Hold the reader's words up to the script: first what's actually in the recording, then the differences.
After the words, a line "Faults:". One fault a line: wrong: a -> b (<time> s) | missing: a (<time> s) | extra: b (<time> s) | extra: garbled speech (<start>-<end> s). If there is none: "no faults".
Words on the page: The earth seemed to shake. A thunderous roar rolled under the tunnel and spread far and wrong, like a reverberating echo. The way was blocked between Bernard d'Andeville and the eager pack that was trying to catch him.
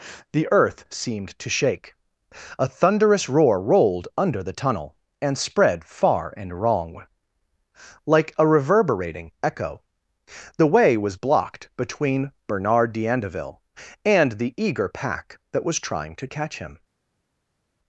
The earth seemed to shake. A thunderous roar rolled under the tunnel and spread far and wrong, like a reverberating echo. The way was blocked between Bernard d'Andeville and the eager pack that was trying to catch him.
Faults:
no faults